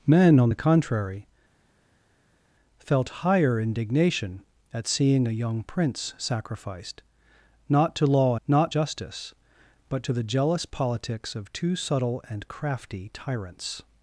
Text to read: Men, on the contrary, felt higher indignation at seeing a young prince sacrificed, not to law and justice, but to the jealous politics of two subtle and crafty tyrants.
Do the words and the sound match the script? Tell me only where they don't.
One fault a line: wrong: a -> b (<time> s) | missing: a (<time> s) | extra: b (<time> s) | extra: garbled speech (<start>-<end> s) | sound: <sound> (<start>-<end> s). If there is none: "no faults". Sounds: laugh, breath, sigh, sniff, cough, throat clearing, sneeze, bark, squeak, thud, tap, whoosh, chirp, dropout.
wrong: and -> not (8.5 s)